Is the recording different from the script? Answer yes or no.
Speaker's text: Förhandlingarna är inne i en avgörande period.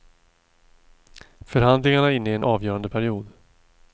no